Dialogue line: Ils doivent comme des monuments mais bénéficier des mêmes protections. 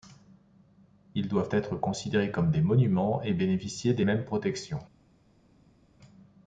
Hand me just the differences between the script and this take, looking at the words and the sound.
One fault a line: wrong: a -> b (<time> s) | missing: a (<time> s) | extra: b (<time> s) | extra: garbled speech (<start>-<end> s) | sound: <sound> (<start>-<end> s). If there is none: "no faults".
extra: être considérés (1.5 s)
wrong: mais -> et (3.2 s)